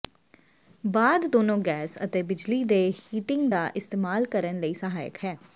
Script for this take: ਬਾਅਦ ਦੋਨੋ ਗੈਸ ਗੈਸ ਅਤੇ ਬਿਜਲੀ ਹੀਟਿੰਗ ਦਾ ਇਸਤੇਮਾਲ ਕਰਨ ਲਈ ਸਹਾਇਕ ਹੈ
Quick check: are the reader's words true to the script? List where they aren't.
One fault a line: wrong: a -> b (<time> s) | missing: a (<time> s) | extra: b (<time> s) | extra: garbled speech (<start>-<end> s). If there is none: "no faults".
missing: ਗੈਸ (2.0 s)
extra: ਦੇ (2.6 s)